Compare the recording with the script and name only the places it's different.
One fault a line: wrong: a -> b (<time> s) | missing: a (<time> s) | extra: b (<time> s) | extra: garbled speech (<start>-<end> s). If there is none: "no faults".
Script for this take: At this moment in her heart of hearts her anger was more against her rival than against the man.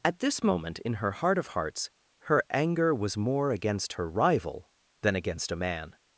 wrong: the -> a (5.5 s)